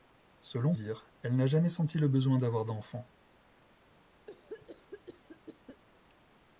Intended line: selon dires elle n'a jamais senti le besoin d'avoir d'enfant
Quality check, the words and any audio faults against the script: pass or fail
fail